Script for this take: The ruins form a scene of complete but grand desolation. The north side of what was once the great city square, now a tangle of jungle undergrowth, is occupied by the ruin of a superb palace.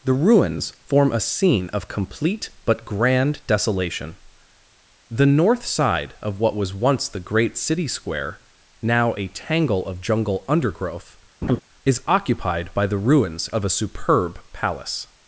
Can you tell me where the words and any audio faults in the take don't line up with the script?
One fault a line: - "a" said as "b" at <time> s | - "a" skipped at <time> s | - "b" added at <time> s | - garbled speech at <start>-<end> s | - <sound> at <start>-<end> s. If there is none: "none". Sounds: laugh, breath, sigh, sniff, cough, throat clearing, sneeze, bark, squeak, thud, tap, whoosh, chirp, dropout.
- laugh at 11.4-11.6 s
- "ruin" said as "ruins" at 13.0 s